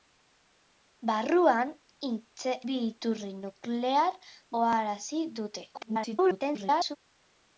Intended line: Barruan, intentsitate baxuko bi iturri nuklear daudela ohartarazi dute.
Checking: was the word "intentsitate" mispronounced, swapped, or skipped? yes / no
yes